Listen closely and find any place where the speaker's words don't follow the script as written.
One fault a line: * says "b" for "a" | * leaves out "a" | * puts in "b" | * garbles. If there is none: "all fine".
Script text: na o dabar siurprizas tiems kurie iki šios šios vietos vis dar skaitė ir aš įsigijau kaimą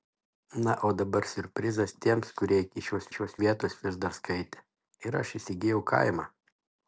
all fine